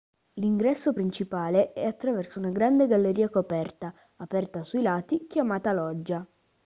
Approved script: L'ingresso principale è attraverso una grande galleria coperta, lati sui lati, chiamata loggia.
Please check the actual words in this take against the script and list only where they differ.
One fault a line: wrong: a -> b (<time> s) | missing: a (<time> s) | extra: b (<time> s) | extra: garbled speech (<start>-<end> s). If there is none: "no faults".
wrong: lati -> aperta (4.2 s)